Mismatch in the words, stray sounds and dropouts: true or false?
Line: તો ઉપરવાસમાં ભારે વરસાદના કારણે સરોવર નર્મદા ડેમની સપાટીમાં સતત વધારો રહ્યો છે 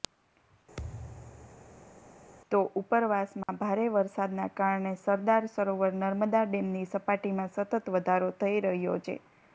true